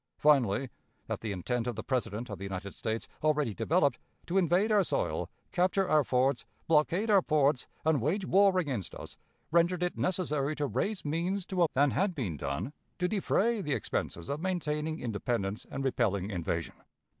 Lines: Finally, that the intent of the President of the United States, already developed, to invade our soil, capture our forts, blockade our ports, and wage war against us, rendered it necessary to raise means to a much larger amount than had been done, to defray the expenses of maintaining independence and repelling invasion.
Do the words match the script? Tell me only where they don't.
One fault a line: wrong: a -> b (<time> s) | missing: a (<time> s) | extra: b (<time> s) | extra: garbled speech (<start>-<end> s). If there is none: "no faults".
missing: much larger amount (11.7 s)